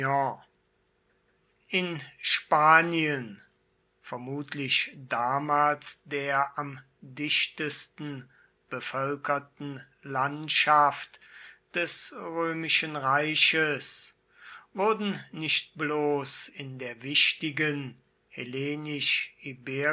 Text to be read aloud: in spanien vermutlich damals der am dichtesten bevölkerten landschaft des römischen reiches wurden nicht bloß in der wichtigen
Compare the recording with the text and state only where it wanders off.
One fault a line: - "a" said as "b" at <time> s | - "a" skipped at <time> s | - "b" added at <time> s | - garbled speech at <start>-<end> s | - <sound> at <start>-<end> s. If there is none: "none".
none